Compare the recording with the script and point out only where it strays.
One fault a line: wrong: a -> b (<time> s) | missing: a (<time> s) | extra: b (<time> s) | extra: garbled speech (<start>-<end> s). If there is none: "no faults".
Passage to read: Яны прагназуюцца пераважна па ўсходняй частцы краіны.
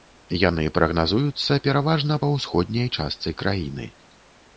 no faults